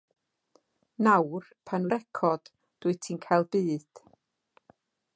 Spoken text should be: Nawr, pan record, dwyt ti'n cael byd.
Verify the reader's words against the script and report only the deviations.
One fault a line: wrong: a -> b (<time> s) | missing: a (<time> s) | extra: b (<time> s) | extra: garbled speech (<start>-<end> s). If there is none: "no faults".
no faults